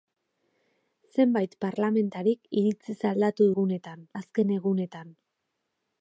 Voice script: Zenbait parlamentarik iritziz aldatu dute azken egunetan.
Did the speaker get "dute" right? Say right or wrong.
wrong